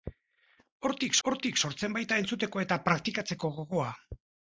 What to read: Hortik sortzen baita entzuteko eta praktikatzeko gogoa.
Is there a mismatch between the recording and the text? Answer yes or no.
yes